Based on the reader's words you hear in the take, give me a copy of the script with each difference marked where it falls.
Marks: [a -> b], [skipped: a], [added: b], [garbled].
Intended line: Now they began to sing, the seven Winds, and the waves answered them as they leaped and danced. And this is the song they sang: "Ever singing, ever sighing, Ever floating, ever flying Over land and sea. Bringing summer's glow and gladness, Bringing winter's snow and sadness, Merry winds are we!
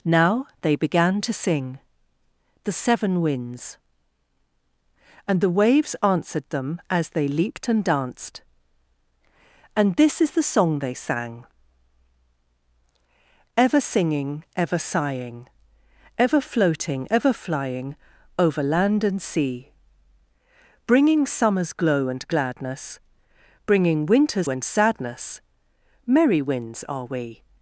Now they began to sing, the seven Winds, and the waves answered them as they leaped and danced. And this is the song they sang: "Ever singing, ever sighing, Ever floating, ever flying Over land and sea. Bringing summer's glow and gladness, Bringing winter's [skipped: snow] and sadness, Merry winds are we!